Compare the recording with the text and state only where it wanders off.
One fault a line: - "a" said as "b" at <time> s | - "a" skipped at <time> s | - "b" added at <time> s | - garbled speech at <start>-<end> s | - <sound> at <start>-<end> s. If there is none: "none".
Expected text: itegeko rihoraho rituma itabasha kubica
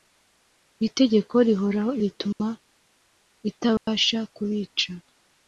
- dropout at 2.3-2.4 s
- dropout at 3.8-3.9 s